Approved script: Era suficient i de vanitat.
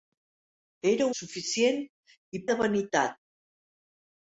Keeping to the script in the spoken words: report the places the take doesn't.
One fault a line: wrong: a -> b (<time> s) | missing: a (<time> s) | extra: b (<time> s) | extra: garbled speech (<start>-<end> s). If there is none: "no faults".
no faults